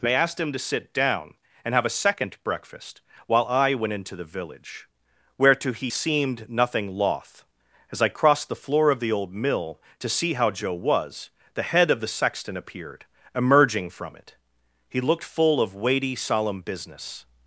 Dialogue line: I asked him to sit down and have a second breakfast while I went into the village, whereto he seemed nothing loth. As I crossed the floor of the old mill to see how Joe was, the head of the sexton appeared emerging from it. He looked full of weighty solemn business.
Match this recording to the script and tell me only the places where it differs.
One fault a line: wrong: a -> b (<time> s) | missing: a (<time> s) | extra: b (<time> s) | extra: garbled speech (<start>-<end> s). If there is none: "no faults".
wrong: I -> they (0.0 s)